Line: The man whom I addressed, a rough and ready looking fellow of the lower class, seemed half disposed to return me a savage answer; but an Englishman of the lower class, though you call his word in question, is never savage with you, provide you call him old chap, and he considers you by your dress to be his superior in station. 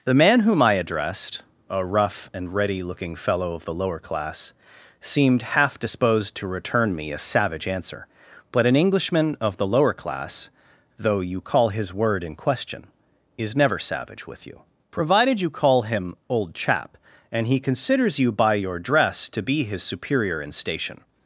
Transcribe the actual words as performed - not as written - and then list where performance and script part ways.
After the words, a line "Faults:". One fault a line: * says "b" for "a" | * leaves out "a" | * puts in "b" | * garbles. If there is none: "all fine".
The man whom I addressed, a rough and ready looking fellow of the lower class, seemed half disposed to return me a savage answer; but an Englishman of the lower class, though you call his word in question, is never savage with you, provided you call him old chap, and he considers you by your dress to be his superior in station.
Faults:
* says "provided" for "provide"